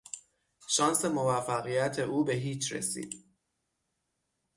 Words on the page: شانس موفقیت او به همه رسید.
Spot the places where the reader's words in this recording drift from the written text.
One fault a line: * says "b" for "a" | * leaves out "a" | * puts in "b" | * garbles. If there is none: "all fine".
* says "هیچ" for "همه"